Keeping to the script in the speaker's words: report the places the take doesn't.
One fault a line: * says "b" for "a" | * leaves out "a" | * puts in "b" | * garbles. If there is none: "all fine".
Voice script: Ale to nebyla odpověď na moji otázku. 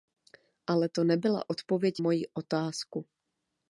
* leaves out "na"